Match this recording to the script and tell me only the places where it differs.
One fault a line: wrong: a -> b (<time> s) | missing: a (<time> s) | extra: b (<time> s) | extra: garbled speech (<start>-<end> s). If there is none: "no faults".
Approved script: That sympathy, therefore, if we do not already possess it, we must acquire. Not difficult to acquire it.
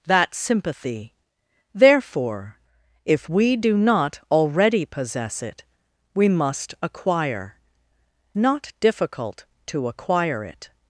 no faults